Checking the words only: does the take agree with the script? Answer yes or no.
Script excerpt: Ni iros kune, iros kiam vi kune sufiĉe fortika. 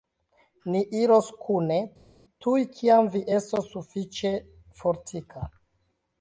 no